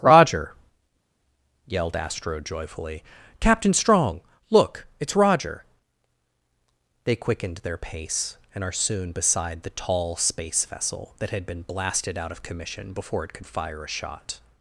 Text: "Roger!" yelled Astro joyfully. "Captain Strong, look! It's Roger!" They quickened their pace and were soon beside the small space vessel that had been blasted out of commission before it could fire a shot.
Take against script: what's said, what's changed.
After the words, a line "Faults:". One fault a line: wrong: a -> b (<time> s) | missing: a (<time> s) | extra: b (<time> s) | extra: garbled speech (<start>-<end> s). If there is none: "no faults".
"Roger!" yelled Astro joyfully. "Captain Strong, look! It's Roger!" They quickened their pace and are soon beside the tall space vessel that had been blasted out of commission before it could fire a shot.
Faults:
wrong: were -> are (8.6 s)
wrong: small -> tall (9.7 s)